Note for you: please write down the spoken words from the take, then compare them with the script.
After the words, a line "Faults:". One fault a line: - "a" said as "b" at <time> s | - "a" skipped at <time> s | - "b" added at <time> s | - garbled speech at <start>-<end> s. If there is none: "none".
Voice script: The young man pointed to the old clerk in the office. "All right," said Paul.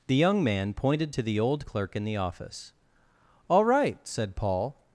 The young man pointed to the old clerk in the office. "All right," said Paul.
Faults:
none